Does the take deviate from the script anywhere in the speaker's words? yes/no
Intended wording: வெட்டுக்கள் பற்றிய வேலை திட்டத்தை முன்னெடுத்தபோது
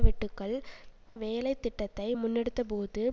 yes